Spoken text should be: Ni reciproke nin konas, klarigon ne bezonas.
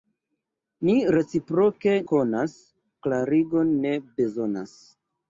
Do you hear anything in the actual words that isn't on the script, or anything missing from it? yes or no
yes